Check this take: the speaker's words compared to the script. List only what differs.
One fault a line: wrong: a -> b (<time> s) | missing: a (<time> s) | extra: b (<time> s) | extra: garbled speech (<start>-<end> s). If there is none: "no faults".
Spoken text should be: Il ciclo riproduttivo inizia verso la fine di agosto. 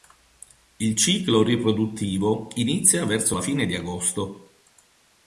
no faults